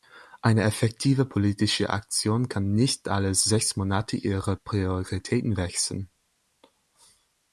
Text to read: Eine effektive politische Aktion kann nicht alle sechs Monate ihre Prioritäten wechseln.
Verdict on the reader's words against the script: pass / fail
pass